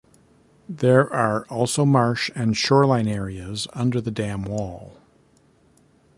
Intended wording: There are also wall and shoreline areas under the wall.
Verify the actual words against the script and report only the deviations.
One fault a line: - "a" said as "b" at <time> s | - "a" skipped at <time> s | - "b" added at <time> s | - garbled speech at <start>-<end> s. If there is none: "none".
- "wall" said as "marsh" at 1.9 s
- "dam" added at 4.1 s